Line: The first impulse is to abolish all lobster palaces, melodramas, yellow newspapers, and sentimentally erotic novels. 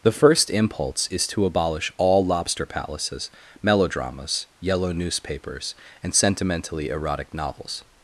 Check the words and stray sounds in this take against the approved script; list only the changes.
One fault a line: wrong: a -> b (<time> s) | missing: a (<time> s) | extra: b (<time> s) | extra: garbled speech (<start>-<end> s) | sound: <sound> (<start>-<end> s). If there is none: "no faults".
no faults